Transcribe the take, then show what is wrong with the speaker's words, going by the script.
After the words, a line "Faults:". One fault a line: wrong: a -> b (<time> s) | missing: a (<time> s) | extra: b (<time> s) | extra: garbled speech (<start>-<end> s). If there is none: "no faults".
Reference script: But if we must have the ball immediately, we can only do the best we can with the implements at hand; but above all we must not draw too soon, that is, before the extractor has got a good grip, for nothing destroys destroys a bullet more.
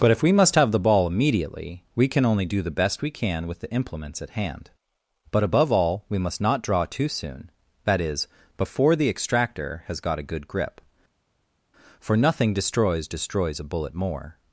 But if we must have the ball immediately, we can only do the best we can with the implements at hand; but above all we must not draw too soon, that is, before the extractor has got a good grip, for nothing destroys destroys a bullet more.
Faults:
no faults